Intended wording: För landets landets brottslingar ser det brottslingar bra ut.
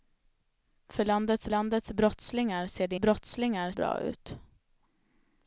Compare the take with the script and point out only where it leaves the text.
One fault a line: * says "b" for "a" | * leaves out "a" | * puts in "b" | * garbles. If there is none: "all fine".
all fine